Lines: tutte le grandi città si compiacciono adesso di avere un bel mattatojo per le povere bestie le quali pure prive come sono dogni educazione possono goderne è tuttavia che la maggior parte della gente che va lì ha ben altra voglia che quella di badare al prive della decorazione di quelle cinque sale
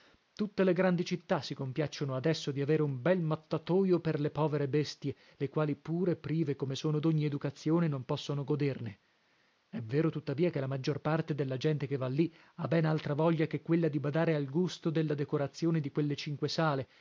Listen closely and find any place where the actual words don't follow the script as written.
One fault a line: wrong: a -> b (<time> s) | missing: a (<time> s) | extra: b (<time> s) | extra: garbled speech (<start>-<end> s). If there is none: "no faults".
extra: non (7.9 s)
extra: vero (9.8 s)
wrong: prive -> gusto (14.5 s)